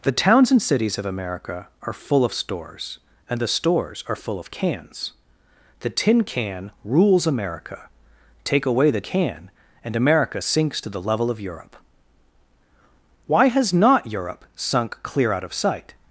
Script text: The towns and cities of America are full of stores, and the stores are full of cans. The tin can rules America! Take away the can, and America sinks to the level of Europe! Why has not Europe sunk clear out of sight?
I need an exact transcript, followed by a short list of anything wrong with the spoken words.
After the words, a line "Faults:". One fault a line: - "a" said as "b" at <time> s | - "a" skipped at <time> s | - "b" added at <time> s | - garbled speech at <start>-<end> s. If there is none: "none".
The towns and cities of America are full of stores, and the stores are full of cans. The tin can rules America! Take away the can, and America sinks to the level of Europe! Why has not Europe sunk clear out of sight?
Faults:
none